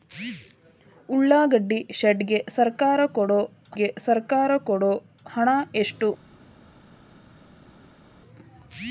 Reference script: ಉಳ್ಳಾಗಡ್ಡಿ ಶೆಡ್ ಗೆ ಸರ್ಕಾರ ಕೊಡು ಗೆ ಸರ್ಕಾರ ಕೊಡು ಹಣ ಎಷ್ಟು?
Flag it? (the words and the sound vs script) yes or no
no